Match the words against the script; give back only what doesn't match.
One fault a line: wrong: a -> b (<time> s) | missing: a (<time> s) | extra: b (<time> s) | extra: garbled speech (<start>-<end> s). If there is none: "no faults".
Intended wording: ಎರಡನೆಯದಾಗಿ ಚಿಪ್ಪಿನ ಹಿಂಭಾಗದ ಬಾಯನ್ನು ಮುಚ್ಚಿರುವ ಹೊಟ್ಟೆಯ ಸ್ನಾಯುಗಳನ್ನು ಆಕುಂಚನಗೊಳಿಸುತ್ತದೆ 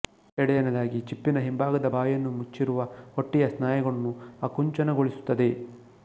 no faults